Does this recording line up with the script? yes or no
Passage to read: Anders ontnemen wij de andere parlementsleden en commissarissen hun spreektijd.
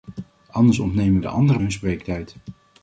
no